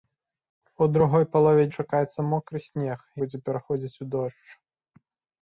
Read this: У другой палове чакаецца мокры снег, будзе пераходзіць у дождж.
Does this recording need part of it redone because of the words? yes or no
no